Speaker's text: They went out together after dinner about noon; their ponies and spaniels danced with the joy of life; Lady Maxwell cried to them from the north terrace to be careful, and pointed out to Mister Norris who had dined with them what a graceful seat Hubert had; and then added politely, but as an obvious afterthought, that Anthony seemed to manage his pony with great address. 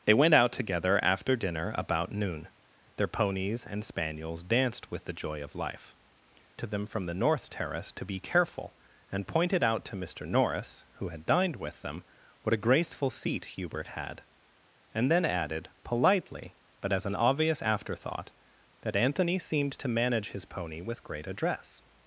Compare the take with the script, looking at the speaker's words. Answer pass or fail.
fail